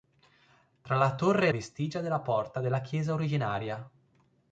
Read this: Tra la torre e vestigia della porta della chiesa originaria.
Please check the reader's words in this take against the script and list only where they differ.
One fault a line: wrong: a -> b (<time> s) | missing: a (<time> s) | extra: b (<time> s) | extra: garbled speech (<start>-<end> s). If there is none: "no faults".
no faults